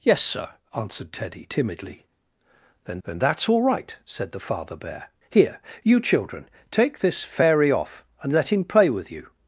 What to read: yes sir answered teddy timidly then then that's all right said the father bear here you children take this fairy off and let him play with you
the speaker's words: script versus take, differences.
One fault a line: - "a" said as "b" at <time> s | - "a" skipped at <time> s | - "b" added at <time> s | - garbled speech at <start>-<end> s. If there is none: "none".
none